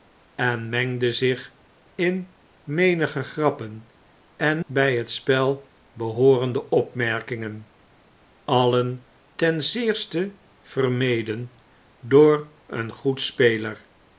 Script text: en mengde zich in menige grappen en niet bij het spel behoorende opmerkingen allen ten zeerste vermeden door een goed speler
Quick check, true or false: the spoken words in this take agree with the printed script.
false